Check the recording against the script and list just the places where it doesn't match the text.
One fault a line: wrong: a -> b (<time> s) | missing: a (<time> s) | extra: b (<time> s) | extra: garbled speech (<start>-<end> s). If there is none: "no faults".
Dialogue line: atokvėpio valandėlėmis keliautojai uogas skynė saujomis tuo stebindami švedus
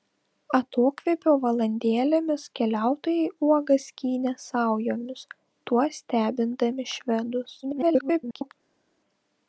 extra: garbled speech (7.6-8.5 s)